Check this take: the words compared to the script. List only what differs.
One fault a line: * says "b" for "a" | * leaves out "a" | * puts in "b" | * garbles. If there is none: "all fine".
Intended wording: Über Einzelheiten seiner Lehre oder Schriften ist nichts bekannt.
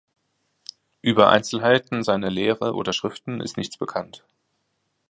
all fine